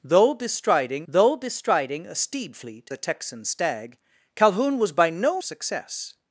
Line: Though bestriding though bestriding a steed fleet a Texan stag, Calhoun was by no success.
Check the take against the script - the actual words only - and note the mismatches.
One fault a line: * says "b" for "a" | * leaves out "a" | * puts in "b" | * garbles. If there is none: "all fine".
all fine